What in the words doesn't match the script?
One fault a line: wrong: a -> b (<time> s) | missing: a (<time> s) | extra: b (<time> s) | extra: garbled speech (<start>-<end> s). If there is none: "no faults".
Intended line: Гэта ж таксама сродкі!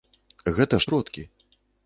missing: таксама (0.9 s)